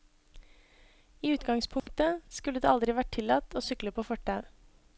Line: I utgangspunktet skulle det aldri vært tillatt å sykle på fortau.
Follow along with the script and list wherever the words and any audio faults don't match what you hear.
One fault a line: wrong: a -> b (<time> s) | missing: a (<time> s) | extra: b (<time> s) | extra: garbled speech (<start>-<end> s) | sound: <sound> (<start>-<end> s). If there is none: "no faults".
sound: dropout (1.8-1.9 s)